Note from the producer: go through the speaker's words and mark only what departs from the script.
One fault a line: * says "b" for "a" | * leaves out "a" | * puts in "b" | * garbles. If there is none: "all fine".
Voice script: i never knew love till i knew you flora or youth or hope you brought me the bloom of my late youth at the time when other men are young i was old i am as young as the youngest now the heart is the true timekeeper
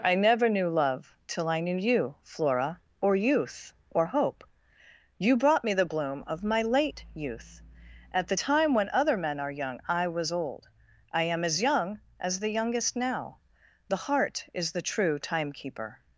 all fine